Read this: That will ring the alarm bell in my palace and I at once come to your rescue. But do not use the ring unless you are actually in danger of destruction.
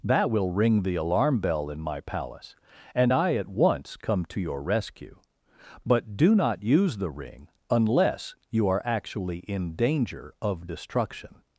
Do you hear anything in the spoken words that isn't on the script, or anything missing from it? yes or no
no